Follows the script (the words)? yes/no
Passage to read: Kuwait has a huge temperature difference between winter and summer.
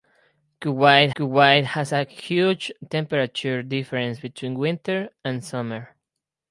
no